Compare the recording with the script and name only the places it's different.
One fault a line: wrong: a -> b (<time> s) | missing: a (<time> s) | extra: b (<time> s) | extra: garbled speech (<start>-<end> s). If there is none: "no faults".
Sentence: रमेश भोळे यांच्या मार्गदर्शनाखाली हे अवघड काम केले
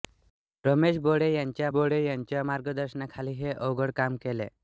extra: भोळे यांच्या (1.7 s)